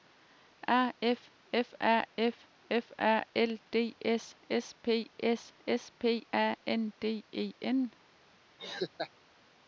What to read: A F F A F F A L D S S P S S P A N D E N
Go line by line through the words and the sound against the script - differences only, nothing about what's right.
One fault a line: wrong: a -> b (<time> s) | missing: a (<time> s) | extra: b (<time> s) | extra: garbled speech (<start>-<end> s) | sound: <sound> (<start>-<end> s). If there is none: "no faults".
sound: laugh (8.6-9.1 s)